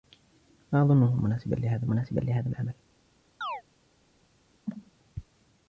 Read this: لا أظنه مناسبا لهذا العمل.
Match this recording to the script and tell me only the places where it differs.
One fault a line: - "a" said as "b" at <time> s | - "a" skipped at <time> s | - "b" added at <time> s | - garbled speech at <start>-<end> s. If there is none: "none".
- "مناسبا لهذا" added at 1.9 s